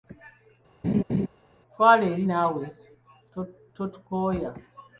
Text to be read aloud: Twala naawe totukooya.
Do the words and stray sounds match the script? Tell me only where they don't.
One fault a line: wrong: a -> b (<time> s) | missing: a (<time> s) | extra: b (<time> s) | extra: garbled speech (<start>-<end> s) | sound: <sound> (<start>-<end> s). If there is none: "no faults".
sound: laugh (0.8-1.3 s)
extra: eri (2.1 s)